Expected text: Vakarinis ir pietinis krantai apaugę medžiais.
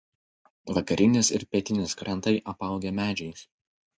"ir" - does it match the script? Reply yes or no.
yes